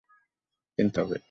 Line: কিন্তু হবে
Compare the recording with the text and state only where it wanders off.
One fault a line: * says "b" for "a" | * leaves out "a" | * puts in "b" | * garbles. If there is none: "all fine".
all fine